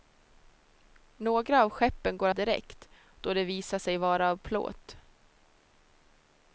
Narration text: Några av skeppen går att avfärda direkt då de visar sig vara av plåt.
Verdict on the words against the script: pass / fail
fail